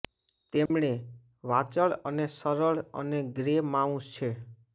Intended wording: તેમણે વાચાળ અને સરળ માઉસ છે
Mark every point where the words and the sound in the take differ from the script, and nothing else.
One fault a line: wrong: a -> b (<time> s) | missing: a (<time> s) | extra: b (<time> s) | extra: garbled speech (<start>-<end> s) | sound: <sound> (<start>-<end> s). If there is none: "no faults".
sound: dropout (0.7-0.7 s)
extra: અને ગ્રે (3.0 s)